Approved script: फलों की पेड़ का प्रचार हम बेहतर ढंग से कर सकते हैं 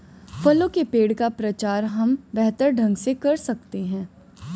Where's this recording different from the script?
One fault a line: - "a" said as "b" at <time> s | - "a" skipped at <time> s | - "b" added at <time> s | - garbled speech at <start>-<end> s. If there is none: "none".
- "की" said as "के" at 0.7 s